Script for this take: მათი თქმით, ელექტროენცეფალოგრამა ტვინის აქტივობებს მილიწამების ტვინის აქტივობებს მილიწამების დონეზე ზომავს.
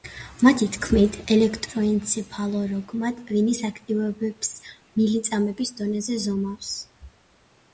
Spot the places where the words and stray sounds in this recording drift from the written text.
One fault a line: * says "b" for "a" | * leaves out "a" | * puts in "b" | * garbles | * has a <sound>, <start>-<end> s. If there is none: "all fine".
* leaves out "ტვინის აქტივობებს მილიწამების"